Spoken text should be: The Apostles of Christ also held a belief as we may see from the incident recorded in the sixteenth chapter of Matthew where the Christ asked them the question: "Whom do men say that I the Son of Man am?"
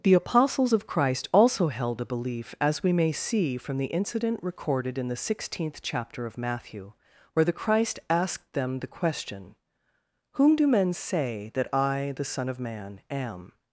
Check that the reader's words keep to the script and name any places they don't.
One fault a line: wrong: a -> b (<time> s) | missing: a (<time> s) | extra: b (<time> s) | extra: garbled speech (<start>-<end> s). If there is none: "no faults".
no faults